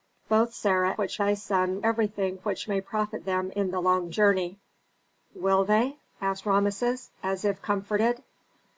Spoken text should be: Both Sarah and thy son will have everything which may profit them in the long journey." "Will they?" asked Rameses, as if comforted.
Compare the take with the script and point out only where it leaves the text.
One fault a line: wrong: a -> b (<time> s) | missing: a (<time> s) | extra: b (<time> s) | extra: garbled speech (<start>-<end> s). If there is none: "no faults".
wrong: and -> which (0.9 s)
missing: will have (1.9 s)